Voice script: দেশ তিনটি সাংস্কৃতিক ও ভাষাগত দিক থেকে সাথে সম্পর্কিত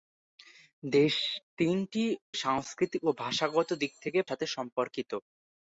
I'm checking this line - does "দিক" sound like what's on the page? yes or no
yes